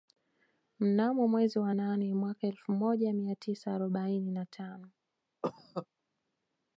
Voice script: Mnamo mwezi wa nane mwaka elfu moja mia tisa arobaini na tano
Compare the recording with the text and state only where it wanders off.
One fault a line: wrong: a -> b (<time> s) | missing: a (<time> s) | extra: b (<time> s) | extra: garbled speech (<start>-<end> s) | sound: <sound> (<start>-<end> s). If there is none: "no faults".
sound: cough (5.4-5.9 s)